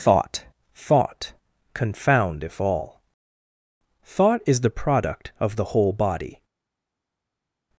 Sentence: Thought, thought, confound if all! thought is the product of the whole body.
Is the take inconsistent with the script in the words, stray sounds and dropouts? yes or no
no